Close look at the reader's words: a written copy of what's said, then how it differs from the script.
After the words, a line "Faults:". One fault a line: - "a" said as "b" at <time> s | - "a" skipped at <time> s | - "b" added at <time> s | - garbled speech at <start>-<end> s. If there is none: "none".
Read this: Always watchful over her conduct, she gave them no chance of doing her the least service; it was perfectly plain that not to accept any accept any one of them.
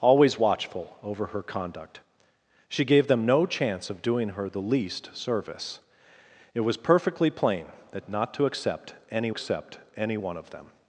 Always watchful over her conduct, she gave them no chance of doing her the least service; it was perfectly plain that not to accept any accept any one of them.
Faults:
none